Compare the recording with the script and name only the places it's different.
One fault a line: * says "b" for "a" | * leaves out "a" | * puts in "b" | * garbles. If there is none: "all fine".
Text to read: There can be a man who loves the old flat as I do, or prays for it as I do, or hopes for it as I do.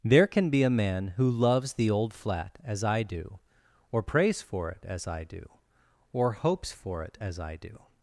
all fine